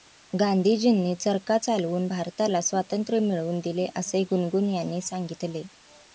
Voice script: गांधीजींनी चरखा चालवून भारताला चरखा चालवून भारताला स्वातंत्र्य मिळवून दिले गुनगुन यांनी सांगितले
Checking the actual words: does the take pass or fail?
fail